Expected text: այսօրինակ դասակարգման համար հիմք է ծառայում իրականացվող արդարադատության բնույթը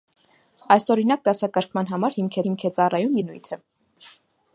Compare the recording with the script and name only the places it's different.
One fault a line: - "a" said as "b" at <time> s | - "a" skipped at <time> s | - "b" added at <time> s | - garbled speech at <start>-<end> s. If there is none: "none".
- "հիմք" added at 2.4 s
- "իրականացվող արդարադատության" skipped at 3.2 s